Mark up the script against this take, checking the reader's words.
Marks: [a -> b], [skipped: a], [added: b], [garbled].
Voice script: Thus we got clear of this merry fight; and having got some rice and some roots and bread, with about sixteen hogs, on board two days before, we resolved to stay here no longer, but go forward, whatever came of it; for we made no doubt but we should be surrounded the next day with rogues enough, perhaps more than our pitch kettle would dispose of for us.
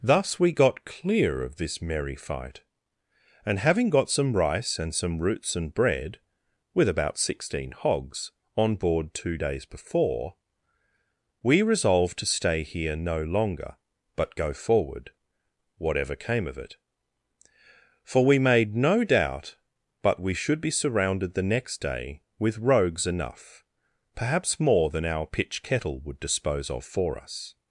Thus we got clear of this merry fight; and having got some rice and some roots and bread, with about sixteen hogs, on board two days before, we resolved to stay here no longer, but go forward, whatever came of it; for we made no doubt but we should be surrounded the next day with rogues enough, perhaps more than our pitch kettle would dispose of for us.